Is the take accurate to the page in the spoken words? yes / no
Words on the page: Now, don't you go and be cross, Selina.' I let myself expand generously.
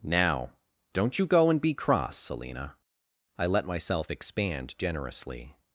yes